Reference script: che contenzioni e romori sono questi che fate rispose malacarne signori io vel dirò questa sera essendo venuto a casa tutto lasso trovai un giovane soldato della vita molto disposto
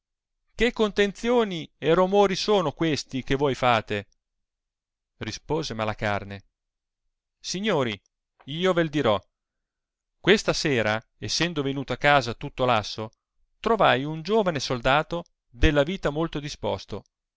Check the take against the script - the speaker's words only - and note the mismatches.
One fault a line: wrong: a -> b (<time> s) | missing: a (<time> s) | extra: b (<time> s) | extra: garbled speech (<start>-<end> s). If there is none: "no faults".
extra: voi (3.4 s)